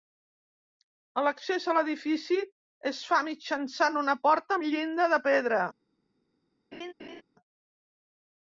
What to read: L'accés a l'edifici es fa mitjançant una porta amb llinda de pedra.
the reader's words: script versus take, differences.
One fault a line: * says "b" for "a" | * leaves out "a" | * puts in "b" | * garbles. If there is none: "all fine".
all fine